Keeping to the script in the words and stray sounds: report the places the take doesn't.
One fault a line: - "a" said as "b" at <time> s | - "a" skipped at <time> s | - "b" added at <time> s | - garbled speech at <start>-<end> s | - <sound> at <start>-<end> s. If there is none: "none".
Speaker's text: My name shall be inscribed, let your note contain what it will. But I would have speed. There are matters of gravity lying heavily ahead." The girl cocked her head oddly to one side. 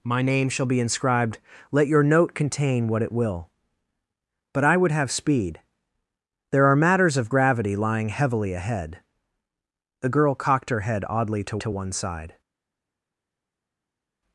- "to" added at 11.6 s